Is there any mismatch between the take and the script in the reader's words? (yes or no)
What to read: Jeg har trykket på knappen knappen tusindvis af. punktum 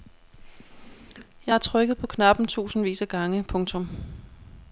yes